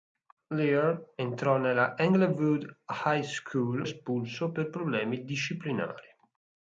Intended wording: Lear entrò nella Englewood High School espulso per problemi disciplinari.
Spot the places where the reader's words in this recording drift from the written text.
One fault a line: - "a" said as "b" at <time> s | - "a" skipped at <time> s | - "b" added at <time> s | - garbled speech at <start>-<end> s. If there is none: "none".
none